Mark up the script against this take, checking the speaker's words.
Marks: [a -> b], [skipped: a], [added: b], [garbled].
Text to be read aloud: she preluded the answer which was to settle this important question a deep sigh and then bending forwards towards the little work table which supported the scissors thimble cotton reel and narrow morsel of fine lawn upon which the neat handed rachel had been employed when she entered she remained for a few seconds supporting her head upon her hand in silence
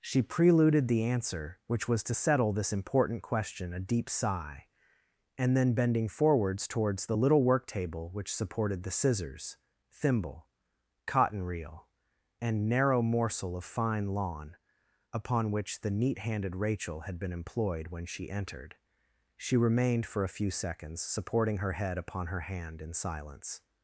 she preluded the answer which was to settle this important question a deep sigh and then bending forwards towards the little work table which supported the scissors thimble cotton reel and narrow morsel of fine lawn upon which the neat handed rachel had been employed when she entered she remained for a few seconds supporting her head upon her hand in silence